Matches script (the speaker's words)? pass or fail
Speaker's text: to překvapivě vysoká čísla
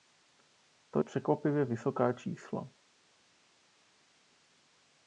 pass